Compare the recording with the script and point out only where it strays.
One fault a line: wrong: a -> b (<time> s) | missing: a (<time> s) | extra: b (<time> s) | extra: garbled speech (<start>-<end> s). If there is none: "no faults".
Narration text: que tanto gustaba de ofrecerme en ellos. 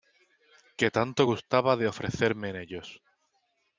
no faults